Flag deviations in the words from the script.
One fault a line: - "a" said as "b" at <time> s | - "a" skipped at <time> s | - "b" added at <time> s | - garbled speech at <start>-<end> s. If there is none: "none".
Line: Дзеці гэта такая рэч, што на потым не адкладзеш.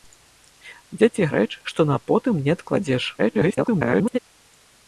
- "гэта такая" skipped at 1.3 s
- garbled speech at 3.2-4.2 s